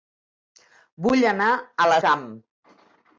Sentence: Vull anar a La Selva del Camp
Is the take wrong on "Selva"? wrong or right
wrong